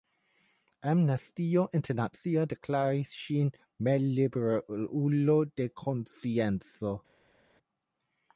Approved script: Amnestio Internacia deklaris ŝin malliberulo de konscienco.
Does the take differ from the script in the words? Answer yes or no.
no